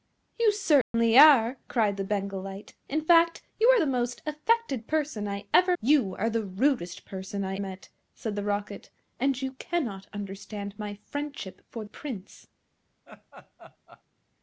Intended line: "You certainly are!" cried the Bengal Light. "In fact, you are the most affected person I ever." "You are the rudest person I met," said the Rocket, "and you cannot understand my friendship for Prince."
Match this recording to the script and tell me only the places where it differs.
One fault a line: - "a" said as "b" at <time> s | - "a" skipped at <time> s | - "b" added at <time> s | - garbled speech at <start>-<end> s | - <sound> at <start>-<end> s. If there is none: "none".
- dropout at 0.8-0.9 s
- laugh at 13.1-14.0 s